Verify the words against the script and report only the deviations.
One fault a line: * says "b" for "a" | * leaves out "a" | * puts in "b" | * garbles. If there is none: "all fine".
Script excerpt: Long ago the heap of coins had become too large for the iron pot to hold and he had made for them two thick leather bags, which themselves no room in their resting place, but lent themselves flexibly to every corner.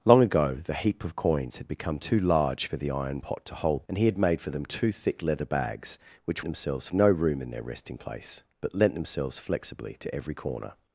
all fine